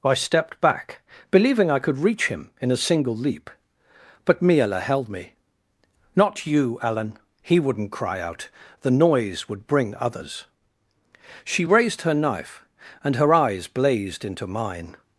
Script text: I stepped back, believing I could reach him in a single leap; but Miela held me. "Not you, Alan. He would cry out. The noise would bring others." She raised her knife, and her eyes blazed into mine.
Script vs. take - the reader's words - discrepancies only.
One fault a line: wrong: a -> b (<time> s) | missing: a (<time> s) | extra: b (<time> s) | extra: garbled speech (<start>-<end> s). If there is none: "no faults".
wrong: would -> wouldn't (7.6 s)